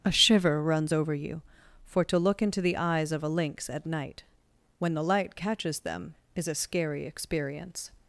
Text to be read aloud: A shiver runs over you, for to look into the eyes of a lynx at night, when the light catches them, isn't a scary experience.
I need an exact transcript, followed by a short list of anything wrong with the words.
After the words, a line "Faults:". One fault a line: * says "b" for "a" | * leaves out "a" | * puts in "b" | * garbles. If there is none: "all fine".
A shiver runs over you, for to look into the eyes of a lynx at night, when the light catches them, is a scary experience.
Faults:
* says "is" for "isn't"